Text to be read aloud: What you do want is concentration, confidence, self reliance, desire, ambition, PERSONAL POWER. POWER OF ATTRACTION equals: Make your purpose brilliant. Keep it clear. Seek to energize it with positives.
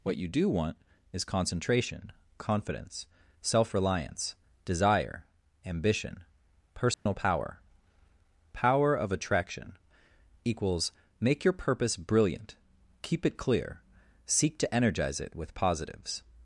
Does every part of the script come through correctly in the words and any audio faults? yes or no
no